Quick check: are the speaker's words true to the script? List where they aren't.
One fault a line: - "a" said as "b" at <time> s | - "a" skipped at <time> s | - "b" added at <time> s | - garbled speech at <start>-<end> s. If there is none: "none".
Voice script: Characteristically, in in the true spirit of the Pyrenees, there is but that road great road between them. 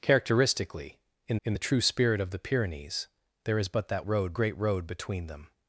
none